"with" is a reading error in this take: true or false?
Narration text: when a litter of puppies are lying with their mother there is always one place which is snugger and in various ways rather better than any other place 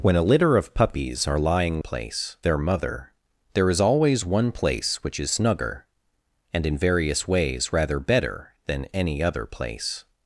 true